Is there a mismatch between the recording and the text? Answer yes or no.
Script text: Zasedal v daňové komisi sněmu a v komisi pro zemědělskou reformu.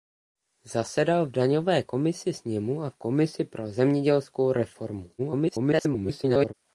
yes